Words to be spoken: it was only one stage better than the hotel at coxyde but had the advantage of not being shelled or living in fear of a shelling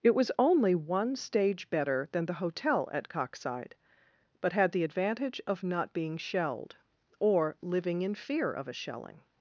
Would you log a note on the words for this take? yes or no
no